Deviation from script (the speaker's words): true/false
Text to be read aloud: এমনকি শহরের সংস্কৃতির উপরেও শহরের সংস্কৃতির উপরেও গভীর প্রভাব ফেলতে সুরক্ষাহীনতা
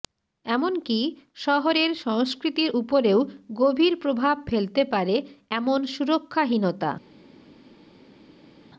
true